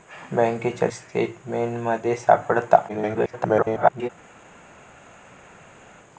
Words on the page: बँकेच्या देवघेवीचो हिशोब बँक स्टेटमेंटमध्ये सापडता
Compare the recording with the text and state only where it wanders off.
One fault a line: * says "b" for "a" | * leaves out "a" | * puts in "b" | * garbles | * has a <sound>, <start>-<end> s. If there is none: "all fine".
* leaves out "देवघेवीचो हिशोब बँक"
* garbles